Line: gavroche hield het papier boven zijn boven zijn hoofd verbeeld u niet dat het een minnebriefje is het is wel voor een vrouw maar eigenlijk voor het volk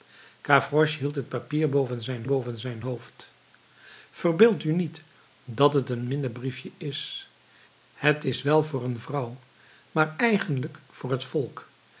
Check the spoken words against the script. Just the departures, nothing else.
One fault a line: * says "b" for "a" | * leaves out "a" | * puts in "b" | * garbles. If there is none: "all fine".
all fine